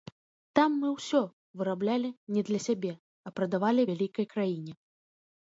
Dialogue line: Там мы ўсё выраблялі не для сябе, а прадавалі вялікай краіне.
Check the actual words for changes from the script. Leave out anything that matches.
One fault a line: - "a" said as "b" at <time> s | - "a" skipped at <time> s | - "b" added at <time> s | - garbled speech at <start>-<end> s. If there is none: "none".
none